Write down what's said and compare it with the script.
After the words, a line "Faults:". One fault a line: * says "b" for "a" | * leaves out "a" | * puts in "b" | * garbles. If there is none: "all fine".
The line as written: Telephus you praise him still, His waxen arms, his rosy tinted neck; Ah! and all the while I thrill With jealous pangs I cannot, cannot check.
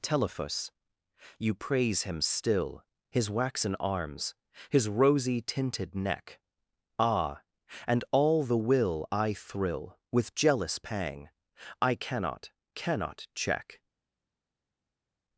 Telephus you praise him still, His waxen arms, his rosy tinted neck; Ah! and all the will I thrill With jealous pang I cannot, cannot check.
Faults:
* says "will" for "while"
* says "pang" for "pangs"